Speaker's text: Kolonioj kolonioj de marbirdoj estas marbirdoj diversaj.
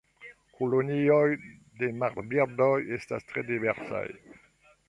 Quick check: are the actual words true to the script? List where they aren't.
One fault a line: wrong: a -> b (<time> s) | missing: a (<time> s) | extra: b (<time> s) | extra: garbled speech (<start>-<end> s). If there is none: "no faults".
missing: kolonioj (1.3 s)
wrong: marbirdoj -> tre (3.3 s)